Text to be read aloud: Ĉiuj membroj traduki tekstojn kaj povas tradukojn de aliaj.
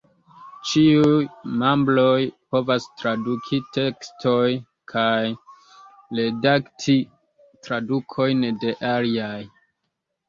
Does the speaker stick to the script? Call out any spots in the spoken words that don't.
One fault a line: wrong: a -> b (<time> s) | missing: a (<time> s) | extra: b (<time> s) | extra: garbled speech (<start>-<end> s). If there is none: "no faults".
extra: povas (2.5 s)
wrong: povas -> redakti (6.2 s)